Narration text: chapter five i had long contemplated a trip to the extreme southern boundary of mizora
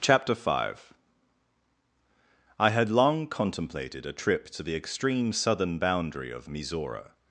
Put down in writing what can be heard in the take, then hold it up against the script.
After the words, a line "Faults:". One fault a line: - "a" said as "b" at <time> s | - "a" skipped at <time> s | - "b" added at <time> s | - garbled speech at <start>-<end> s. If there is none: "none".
chapter five i had long contemplated a trip to the extreme southern boundary of mizora
Faults:
none